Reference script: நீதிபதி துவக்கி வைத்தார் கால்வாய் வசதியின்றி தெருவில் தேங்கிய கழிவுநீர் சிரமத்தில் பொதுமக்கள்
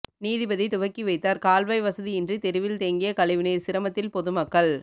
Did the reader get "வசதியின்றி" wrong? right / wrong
right